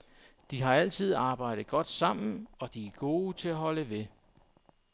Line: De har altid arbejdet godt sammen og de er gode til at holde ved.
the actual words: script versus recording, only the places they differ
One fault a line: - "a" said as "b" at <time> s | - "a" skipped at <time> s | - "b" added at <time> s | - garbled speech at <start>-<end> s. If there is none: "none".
none